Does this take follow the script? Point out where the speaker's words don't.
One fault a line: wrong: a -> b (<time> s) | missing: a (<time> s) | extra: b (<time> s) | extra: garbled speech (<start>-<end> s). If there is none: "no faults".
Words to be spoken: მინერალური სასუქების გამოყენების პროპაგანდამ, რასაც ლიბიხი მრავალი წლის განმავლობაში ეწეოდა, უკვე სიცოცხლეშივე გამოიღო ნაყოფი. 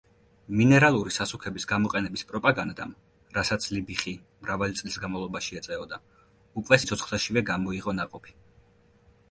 no faults